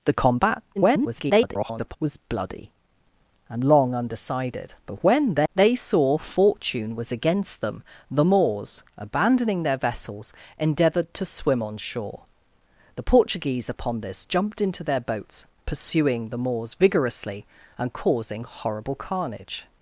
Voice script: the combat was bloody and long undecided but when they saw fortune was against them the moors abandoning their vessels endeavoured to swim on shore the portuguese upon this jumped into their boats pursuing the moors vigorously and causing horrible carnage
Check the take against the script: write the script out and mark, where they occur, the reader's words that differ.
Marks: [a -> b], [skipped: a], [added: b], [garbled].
the combat [garbled] was bloody and long undecided but when they saw fortune was against them the moors abandoning their vessels endeavoured to swim on shore the portuguese upon this jumped into their boats pursuing the moors vigorously and causing horrible carnage